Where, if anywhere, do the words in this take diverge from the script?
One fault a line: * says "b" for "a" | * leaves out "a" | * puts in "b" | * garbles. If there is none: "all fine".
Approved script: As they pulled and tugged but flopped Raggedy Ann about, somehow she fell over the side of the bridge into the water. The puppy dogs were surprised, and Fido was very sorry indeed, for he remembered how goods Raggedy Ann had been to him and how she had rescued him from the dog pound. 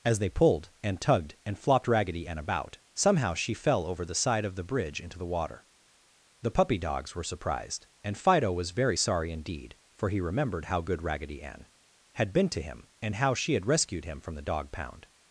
* says "and" for "but"
* says "good" for "goods"